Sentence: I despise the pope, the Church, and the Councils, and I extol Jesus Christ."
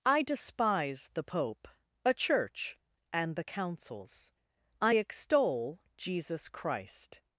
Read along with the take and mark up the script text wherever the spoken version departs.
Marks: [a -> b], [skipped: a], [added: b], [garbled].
I despise the pope, [the -> a] Church, and the Councils, [skipped: and] I extol Jesus Christ."